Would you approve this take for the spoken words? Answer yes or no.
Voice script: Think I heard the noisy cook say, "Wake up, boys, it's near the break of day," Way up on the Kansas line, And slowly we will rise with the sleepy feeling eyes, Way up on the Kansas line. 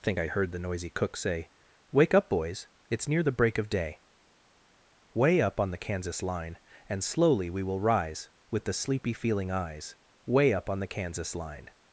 yes